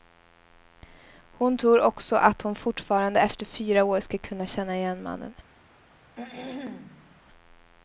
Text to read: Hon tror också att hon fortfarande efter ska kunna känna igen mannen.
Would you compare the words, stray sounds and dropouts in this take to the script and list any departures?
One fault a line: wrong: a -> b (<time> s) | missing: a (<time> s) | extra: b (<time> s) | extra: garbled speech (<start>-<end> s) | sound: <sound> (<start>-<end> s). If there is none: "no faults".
extra: fyra år (3.5 s)
sound: throat clearing (6.1-7.2 s)